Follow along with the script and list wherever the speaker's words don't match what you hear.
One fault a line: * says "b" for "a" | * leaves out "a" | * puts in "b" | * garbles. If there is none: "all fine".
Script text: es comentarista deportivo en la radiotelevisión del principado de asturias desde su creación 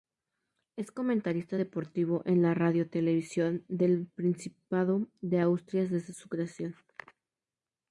all fine